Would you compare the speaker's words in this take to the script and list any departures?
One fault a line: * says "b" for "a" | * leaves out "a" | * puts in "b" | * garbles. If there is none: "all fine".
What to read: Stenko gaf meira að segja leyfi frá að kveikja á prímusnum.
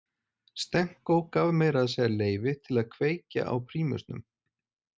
* says "til" for "frá"